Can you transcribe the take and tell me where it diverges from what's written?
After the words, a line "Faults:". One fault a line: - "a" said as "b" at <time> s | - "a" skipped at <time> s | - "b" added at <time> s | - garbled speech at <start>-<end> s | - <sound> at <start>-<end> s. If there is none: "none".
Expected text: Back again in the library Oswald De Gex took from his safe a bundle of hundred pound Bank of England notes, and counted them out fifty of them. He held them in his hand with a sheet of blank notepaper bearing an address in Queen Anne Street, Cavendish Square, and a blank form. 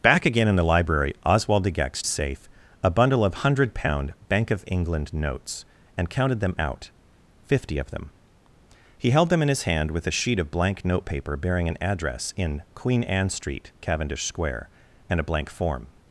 Back again in the library Oswald De Gex safe a bundle of hundred pound Bank of England notes, and counted them out fifty of them. He held them in his hand with a sheet of blank notepaper bearing an address in Queen Anne Street, Cavendish Square, and a blank form.
Faults:
- "took from his" skipped at 2.0 s